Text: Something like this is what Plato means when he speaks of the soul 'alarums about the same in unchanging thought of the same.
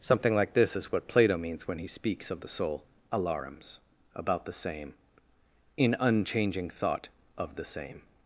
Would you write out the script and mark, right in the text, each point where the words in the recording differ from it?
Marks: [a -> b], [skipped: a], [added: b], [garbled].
Something like this is what Plato means when he speaks of the soul 'alarums about the same in unchanging thought of the same.